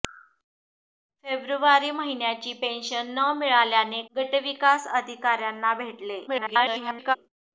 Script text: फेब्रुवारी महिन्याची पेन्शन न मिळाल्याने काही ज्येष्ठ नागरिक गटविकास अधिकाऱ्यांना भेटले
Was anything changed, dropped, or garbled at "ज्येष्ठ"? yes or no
yes